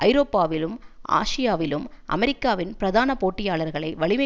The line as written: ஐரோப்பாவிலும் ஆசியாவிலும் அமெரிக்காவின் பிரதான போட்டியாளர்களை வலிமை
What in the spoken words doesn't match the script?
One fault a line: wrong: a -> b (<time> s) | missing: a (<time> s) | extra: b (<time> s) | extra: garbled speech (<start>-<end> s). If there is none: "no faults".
no faults